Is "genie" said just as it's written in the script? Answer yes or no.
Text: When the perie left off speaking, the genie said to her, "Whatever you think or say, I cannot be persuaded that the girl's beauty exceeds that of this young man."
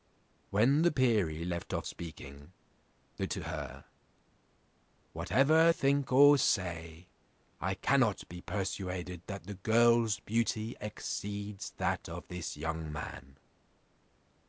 no